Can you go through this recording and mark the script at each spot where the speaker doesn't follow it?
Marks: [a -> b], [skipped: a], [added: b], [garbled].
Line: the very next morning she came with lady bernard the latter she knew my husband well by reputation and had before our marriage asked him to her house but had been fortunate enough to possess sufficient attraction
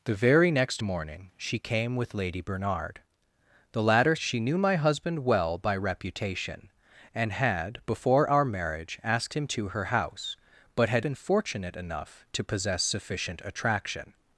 the very next morning she came with lady bernard the latter she knew my husband well by reputation and had before our marriage asked him to her house but had been fortunate enough to possess sufficient attraction